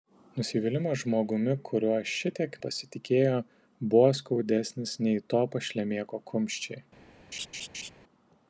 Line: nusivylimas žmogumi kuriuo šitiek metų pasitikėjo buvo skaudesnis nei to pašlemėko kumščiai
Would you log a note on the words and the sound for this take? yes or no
yes